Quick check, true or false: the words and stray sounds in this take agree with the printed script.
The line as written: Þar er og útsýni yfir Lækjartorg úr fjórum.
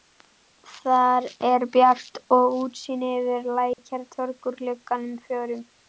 false